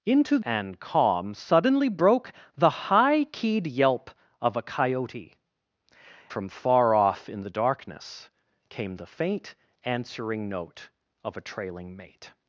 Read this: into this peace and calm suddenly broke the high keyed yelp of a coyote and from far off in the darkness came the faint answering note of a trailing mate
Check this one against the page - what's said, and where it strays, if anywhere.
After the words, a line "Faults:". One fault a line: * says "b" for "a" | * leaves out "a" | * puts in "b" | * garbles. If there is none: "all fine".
into and calm suddenly broke the high keyed yelp of a coyote from far off in the darkness came the faint answering note of a trailing mate
Faults:
* leaves out "this peace"
* leaves out "and"